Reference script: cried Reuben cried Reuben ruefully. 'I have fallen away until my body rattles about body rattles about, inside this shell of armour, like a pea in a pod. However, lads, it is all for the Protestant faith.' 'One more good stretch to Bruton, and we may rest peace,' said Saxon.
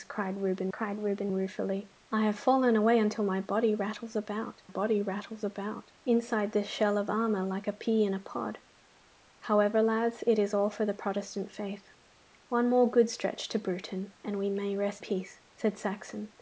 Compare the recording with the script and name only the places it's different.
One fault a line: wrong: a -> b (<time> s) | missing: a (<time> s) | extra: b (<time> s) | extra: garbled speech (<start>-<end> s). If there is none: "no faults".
no faults